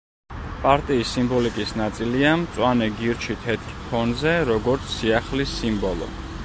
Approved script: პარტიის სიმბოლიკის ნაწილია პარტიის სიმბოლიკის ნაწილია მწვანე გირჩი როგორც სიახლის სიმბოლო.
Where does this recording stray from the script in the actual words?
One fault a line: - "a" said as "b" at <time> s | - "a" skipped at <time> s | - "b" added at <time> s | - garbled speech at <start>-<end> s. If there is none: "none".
- "პარტიის სიმბოლიკის ნაწილია მწვანე გირჩი" said as "მწვანე გირჩი თეთრ ფონზე" at 2.4 s